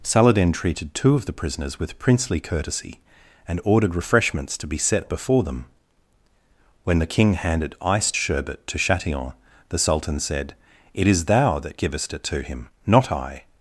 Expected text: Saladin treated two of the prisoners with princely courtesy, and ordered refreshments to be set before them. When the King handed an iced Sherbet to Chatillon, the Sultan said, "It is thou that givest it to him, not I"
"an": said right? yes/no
no